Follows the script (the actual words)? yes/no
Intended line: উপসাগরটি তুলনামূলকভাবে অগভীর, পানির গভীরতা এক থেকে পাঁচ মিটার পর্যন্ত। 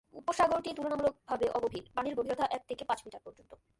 yes